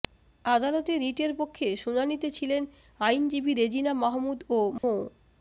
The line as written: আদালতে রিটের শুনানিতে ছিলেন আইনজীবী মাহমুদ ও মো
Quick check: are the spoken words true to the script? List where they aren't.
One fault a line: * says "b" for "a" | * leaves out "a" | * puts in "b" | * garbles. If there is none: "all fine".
* puts in "পক্ষে"
* puts in "রেজিনা"